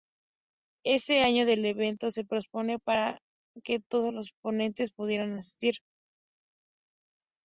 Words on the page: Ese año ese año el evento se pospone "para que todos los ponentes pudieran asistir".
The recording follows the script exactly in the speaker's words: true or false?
false